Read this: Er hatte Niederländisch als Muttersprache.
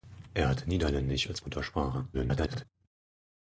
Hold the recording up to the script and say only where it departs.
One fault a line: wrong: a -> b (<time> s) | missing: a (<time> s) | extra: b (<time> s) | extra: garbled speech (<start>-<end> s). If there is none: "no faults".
extra: garbled speech (2.1-2.7 s)